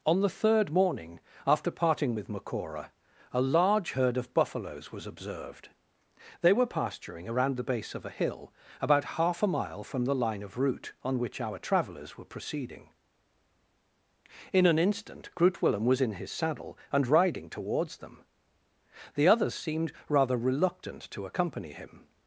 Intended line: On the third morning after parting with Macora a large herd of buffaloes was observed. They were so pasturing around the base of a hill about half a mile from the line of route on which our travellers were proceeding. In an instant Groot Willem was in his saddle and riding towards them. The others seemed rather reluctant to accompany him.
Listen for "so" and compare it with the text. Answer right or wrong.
wrong